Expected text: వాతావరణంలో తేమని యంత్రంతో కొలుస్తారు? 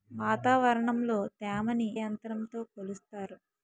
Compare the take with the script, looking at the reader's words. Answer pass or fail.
pass